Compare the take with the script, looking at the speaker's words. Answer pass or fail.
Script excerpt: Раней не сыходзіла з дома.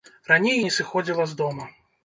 pass